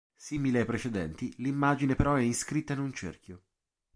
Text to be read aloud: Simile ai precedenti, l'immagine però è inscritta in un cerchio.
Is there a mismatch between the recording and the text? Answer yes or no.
no